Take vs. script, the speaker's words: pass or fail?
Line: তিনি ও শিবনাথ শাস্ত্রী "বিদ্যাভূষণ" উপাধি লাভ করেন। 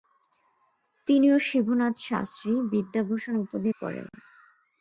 fail